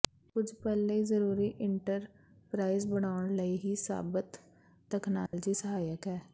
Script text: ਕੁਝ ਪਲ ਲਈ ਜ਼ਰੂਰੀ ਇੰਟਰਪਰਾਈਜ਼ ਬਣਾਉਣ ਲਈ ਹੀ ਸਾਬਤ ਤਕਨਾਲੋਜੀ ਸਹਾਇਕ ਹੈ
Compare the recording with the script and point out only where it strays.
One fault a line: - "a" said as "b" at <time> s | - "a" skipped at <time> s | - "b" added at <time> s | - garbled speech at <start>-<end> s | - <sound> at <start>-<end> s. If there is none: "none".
- dropout at 5.3-5.3 s